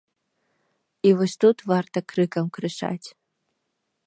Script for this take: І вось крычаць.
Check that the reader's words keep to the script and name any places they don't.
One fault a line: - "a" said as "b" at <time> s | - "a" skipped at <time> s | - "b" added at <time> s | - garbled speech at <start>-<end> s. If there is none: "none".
- "тут варта крыкам" added at 1.4 s